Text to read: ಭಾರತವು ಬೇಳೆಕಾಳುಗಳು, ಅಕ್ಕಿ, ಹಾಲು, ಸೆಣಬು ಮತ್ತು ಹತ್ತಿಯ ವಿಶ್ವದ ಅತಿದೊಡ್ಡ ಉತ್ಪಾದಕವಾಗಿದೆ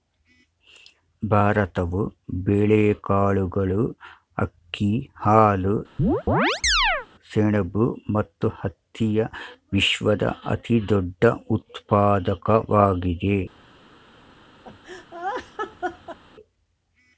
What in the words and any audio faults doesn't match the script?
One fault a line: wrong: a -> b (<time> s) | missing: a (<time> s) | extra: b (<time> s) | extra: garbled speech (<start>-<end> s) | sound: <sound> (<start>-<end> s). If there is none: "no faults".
sound: chirp (6.0-7.1 s)
sound: laugh (14.6-16.2 s)